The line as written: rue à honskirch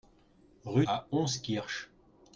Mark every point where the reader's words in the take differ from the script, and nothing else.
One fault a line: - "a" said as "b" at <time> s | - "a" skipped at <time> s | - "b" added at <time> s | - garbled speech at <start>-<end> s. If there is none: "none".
none